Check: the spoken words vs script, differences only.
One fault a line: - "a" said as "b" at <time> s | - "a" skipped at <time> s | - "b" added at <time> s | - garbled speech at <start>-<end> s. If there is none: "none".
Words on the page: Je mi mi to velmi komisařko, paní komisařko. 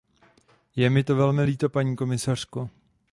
- "mi" skipped at 1.0 s
- "komisařko" said as "líto" at 1.4 s